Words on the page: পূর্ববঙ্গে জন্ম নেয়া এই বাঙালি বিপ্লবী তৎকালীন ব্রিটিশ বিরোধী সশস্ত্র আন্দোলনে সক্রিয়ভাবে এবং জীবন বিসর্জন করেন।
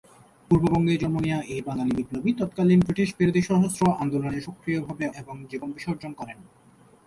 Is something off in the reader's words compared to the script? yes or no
no